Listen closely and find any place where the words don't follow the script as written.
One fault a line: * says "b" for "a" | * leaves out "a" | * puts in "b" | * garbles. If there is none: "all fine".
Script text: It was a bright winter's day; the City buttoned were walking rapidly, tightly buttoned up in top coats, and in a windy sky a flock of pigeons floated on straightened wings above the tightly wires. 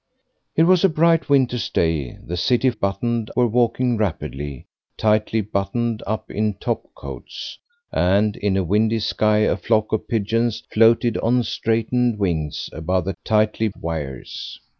all fine